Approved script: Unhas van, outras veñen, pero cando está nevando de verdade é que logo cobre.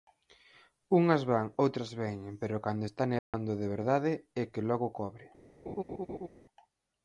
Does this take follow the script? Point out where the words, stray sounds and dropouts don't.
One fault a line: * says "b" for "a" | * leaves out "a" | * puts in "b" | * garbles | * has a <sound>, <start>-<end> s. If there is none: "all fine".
* has a dropout, 3.2-3.3 s
* has a laugh, 5.7-6.3 s